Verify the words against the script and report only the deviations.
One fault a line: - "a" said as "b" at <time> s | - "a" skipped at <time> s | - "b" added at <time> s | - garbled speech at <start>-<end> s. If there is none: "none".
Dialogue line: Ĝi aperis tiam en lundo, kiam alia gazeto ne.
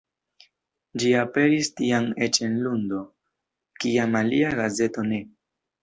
- "eĉ" added at 2.3 s